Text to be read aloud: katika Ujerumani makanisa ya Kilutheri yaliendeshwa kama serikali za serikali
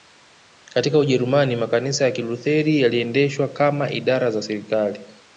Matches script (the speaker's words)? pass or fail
fail